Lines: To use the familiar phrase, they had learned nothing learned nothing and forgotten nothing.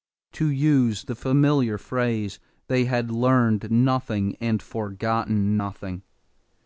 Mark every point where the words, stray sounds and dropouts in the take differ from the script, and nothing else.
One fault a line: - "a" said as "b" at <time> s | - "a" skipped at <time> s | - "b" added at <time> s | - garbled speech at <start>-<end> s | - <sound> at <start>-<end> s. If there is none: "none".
- "learned nothing" skipped at 4.3 s